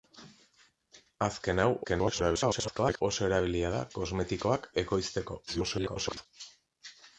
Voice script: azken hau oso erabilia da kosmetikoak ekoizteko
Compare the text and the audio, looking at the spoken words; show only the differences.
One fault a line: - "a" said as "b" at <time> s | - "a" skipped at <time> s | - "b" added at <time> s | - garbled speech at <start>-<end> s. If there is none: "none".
- garbled speech at 1.8-3.0 s
- garbled speech at 5.5-6.3 s